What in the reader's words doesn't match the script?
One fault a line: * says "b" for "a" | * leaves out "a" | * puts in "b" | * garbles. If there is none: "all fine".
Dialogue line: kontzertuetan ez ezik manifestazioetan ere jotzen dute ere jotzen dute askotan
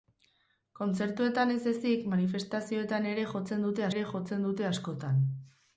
all fine